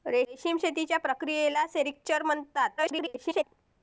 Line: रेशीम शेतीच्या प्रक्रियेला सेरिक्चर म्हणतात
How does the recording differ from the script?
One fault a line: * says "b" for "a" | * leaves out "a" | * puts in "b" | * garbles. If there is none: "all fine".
* garbles